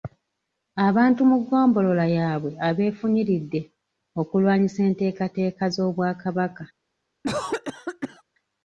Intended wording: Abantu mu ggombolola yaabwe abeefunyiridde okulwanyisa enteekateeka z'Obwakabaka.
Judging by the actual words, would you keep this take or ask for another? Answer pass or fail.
pass